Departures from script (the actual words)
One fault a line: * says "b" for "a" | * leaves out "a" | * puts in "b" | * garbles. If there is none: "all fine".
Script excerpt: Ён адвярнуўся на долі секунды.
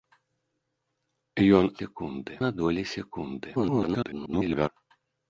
* says "секунды" for "адвярнуўся"
* garbles